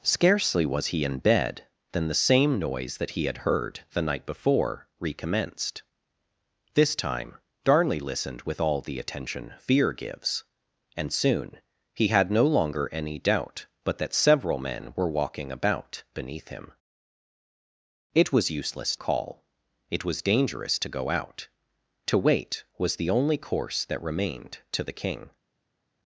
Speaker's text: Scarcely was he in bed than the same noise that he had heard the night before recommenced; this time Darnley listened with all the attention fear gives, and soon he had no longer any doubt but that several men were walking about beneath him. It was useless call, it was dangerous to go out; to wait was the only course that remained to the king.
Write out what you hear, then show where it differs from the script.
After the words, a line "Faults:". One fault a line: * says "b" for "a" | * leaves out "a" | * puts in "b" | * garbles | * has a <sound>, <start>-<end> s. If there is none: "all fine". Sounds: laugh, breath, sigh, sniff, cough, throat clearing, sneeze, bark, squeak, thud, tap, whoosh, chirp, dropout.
Scarcely was he in bed than the same noise that he had heard the night before recommenced; this time Darnley listened with all the attention fear gives, and soon he had no longer any doubt but that several men were walking about beneath him. It was useless call, it was dangerous to go out; to wait was the only course that remained to the king.
Faults:
all fine